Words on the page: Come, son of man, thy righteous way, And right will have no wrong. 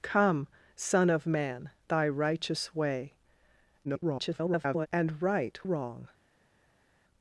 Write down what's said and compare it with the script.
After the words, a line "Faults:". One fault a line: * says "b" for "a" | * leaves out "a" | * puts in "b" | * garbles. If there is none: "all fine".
Come, son of man, thy righteous way, [garbled] And right wrong.
Faults:
* garbles
* leaves out "will have no"